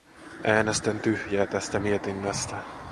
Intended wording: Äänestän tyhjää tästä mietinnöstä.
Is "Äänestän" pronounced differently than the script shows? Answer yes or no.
no